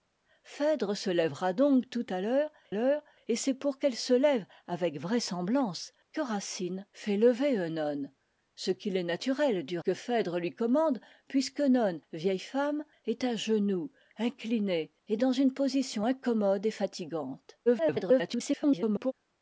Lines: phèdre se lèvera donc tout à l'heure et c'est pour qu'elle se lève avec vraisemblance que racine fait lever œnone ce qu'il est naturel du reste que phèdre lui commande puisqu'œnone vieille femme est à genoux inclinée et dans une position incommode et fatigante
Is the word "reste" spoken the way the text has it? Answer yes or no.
no